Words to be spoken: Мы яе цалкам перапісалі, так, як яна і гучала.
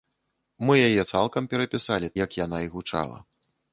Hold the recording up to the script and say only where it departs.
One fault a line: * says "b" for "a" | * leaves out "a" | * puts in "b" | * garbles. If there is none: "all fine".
* leaves out "так"